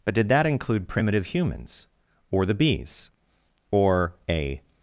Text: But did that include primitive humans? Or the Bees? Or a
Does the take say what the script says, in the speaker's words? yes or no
yes